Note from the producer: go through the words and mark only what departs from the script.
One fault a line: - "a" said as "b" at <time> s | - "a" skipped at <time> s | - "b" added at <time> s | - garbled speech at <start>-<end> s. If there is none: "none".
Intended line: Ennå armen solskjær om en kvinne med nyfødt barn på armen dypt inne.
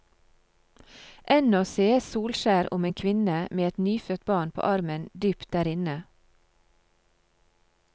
- "armen" said as "sees" at 1.7 s
- "et" added at 3.7 s
- "der" added at 5.6 s